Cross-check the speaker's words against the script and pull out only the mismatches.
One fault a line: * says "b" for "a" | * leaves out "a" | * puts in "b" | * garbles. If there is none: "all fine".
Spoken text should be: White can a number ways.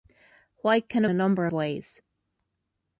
all fine